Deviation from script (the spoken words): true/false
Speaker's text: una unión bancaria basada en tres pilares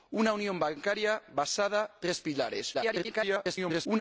true